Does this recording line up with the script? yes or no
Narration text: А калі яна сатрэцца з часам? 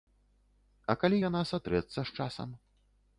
yes